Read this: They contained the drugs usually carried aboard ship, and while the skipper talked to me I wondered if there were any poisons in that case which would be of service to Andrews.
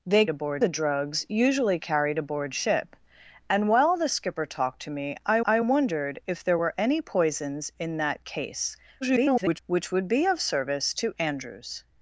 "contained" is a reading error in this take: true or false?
true